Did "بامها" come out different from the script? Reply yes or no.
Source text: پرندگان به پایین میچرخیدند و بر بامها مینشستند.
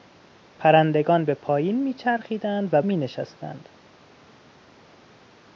yes